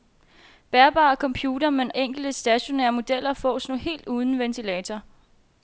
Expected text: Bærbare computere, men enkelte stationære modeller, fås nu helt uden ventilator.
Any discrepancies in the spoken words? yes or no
no